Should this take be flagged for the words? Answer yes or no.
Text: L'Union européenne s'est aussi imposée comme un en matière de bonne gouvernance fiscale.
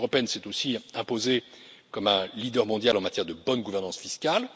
yes